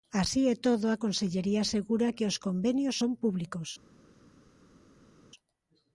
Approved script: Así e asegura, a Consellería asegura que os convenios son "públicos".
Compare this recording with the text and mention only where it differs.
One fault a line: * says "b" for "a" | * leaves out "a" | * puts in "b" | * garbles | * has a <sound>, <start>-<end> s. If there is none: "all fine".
* says "todo" for "asegura"